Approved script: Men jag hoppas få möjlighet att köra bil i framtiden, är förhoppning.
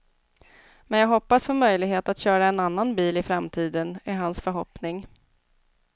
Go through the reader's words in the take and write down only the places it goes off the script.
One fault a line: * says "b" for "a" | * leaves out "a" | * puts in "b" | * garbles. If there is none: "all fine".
* puts in "en annan"
* puts in "hans"